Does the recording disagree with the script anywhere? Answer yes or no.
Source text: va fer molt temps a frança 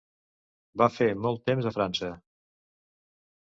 no